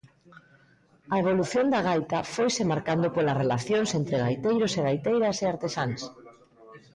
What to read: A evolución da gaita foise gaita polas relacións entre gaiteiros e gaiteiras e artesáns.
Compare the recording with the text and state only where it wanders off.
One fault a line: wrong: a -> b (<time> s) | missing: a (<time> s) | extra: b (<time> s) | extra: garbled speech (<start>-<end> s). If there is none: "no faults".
wrong: gaita -> marcando (2.7 s)